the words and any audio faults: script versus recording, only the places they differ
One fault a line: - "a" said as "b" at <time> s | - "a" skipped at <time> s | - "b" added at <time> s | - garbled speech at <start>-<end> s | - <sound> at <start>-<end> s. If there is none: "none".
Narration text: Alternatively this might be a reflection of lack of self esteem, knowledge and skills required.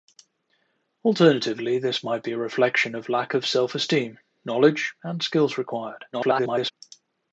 - garbled speech at 6.1-6.7 s